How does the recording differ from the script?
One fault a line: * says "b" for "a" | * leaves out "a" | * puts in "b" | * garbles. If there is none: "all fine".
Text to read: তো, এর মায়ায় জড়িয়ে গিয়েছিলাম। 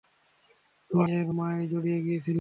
all fine